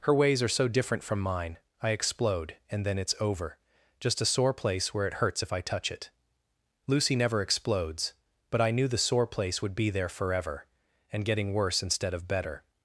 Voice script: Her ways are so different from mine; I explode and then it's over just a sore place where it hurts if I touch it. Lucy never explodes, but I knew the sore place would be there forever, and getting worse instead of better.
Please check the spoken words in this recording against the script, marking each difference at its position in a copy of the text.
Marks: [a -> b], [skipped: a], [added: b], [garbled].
Her ways are so different from mine; I explode and then it's over just a sore place where it hurts if I touch it. Lucy never explodes, but I knew the sore place would be there forever, and getting worse instead of better.